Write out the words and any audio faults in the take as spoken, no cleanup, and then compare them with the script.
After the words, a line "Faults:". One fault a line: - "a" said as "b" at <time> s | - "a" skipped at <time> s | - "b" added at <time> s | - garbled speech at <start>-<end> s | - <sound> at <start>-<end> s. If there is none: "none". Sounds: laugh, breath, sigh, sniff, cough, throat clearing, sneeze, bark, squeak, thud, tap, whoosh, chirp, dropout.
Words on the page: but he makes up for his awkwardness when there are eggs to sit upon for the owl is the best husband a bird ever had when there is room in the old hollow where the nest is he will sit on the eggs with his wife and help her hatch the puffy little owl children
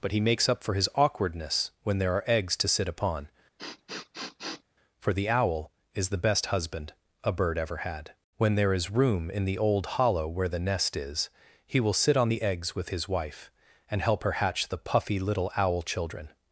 but he makes up for his awkwardness when there are eggs to sit upon for the owl is the best husband a bird ever had when there is room in the old hollow where the nest is he will sit on the eggs with his wife and help her hatch the puffy little owl children
Faults:
- sniff at 3.6-4.6 s